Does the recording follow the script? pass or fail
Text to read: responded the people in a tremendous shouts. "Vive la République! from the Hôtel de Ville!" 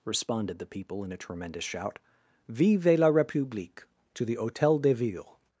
fail